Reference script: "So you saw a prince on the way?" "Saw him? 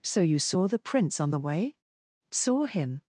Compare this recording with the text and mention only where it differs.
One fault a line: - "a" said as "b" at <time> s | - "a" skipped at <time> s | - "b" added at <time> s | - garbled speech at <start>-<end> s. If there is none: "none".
- "a" said as "the" at 0.7 s